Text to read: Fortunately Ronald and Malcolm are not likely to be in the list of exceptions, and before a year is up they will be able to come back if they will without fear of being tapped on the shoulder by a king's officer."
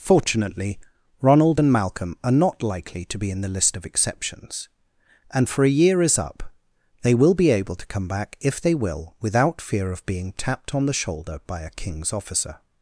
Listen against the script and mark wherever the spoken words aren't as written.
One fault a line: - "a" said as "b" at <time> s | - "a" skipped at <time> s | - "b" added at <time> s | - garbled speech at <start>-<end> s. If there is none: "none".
- "before" said as "for" at 5.5 s